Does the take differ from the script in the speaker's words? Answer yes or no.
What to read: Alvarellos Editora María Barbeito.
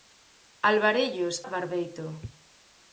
yes